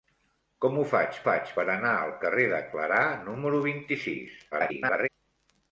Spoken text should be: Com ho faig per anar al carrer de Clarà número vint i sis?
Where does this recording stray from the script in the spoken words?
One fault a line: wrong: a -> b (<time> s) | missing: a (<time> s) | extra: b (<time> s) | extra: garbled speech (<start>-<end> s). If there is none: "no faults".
extra: faig (1.3 s)
extra: garbled speech (4.5-5.1 s)